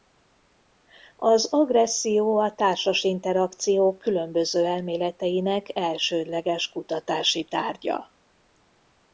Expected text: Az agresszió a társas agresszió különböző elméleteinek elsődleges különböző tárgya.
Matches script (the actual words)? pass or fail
fail